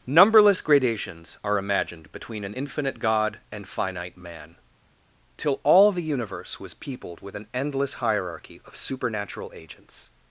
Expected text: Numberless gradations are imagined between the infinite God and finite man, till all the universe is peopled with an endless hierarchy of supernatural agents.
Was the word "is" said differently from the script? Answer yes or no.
yes